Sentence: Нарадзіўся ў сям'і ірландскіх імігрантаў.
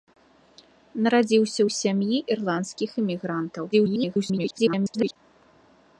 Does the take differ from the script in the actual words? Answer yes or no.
yes